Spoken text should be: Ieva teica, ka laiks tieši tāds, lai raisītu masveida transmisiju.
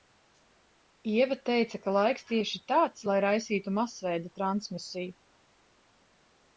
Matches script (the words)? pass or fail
pass